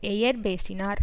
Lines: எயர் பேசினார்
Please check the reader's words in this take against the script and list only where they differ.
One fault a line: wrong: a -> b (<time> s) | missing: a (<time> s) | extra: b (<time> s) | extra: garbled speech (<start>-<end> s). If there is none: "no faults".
no faults